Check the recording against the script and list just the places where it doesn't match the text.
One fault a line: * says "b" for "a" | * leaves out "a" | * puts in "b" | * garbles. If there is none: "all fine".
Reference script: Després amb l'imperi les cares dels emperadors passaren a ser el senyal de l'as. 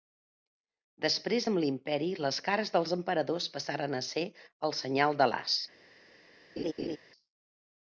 all fine